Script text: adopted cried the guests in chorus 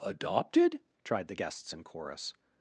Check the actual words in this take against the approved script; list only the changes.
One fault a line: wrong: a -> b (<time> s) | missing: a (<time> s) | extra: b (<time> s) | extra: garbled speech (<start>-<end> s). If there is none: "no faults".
wrong: cried -> tried (1.0 s)